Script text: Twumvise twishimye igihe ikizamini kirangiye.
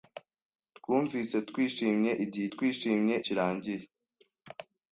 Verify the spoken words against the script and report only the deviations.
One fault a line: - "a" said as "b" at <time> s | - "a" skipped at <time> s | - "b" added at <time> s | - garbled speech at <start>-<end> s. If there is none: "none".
- "ikizamini" said as "twishimye" at 2.5 s